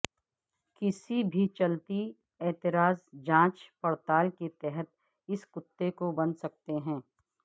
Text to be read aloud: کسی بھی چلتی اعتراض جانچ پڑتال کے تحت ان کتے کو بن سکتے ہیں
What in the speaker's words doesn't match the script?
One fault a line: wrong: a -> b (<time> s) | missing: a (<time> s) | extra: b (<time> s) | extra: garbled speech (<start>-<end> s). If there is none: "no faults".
wrong: ان -> اس (5.3 s)